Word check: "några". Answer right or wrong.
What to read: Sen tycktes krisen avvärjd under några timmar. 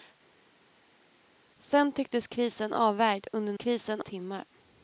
wrong